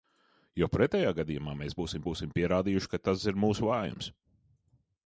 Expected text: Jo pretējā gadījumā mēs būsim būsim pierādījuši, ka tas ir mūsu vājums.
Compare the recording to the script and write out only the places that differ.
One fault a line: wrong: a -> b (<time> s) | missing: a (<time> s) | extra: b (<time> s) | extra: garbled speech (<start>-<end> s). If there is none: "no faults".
no faults